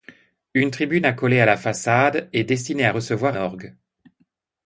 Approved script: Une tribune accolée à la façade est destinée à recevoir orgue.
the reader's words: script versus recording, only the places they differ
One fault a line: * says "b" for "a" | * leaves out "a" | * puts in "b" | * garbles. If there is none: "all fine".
all fine